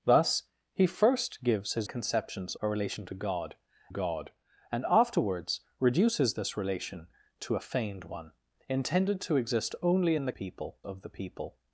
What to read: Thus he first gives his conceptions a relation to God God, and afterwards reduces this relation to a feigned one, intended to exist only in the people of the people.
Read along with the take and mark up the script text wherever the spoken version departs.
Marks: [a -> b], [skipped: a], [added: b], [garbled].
Thus he first gives his conceptions a relation to God God, and afterwards reduces this relation to a feigned one, intended to exist only in the people of the people.